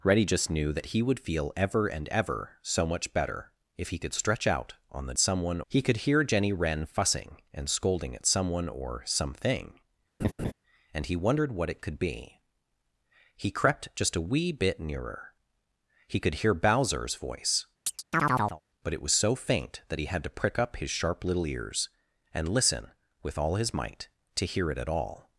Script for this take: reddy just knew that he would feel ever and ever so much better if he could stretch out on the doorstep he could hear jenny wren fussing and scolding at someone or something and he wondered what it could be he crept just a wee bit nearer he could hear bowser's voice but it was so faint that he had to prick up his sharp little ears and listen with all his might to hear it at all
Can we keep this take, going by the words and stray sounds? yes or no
no